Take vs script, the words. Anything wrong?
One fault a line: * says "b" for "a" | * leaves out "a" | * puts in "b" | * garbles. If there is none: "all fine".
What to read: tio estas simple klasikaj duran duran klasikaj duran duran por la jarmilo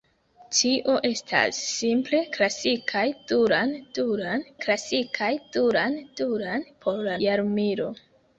all fine